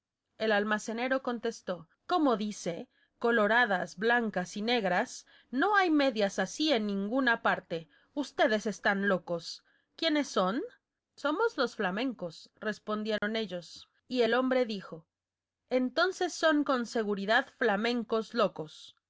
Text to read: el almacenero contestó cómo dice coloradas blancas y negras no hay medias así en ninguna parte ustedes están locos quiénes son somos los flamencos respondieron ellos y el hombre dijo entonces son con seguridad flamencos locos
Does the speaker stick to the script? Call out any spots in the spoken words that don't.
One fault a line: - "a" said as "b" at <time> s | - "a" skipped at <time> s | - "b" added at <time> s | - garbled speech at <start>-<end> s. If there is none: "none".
none